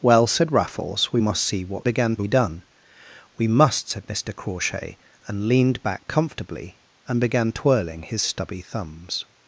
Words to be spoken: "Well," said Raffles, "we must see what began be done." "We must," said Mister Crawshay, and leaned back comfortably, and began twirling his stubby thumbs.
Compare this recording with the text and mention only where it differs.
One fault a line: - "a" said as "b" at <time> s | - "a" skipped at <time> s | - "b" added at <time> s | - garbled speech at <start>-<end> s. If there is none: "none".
none